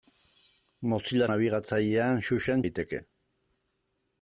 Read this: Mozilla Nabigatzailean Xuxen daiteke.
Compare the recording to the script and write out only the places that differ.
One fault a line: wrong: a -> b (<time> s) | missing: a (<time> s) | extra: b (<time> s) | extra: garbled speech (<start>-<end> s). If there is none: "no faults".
no faults